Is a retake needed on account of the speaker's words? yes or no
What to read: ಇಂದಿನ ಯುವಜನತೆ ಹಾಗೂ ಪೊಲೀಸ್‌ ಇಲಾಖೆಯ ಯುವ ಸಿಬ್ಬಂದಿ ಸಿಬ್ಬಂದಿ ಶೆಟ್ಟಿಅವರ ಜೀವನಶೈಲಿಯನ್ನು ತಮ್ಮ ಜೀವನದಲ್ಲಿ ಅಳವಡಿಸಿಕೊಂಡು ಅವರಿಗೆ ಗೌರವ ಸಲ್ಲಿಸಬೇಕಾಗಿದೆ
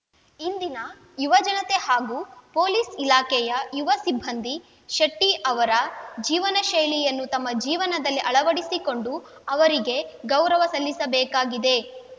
yes